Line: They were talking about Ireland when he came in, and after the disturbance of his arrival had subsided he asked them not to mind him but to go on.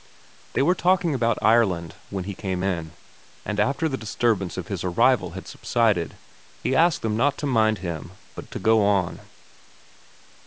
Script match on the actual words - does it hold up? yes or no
yes